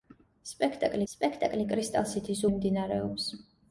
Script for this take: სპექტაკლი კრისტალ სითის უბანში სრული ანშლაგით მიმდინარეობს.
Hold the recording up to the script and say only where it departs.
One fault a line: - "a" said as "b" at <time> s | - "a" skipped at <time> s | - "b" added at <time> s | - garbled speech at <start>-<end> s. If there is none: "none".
- "სპექტაკლი" added at 1.1 s
- "უბანში სრული ანშლაგით" skipped at 2.4 s